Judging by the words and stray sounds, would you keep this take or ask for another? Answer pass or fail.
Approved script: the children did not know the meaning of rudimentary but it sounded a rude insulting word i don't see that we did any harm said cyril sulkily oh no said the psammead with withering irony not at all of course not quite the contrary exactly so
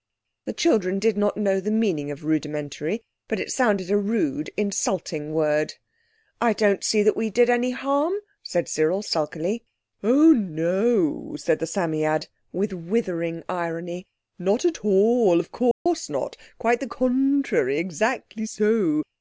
fail